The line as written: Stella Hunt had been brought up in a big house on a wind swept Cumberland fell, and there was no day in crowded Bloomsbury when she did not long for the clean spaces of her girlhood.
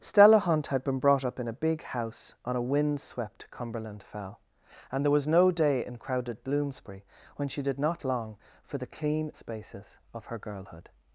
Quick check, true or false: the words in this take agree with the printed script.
true